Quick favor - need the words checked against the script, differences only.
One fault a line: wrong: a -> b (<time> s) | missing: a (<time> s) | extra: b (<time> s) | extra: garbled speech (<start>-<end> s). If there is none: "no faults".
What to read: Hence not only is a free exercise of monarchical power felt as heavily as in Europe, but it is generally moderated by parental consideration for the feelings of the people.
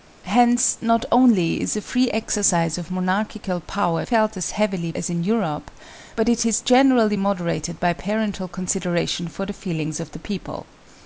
no faults